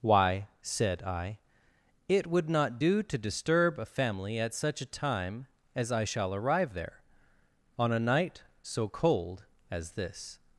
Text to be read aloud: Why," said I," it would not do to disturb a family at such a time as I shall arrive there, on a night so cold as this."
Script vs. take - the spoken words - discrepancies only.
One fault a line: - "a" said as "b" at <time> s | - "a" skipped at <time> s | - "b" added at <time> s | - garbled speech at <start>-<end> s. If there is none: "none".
none